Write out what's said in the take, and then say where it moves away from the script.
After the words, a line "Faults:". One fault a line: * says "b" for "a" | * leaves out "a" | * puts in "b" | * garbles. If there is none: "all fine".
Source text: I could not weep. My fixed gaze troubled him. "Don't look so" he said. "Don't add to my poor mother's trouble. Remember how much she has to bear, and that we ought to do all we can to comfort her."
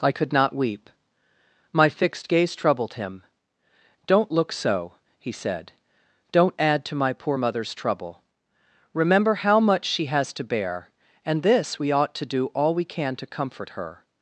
I could not weep. My fixed gaze troubled him. "Don't look so" he said. "Don't add to my poor mother's trouble. Remember how much she has to bear, and this we ought to do all we can to comfort her."
Faults:
* says "this" for "that"